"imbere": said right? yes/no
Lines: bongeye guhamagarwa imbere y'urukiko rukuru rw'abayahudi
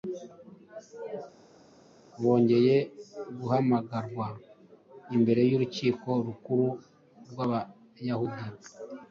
yes